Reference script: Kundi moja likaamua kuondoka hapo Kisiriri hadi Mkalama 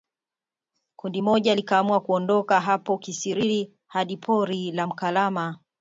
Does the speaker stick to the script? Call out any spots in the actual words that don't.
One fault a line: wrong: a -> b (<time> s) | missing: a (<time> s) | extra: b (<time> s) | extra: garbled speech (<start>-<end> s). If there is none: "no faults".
extra: pori la (4.2 s)